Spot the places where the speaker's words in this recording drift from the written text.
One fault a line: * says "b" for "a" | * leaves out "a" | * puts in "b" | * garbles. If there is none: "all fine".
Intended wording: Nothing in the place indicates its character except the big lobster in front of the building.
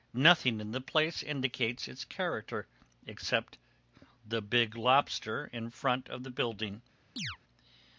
all fine